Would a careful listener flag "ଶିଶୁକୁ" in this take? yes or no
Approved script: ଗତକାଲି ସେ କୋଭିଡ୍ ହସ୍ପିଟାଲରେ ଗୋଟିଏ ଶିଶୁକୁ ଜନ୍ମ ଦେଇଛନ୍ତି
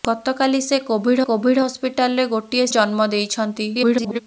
yes